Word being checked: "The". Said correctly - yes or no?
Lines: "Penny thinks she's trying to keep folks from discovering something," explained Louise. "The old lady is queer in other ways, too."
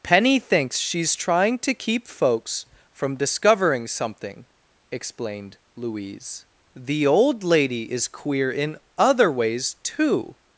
yes